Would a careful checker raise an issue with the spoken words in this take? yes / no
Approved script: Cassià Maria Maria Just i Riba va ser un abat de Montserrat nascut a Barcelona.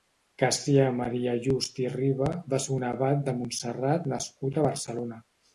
yes